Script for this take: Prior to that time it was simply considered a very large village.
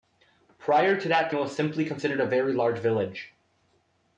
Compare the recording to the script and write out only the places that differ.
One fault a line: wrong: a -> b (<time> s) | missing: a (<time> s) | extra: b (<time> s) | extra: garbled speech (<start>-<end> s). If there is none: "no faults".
missing: time (1.3 s)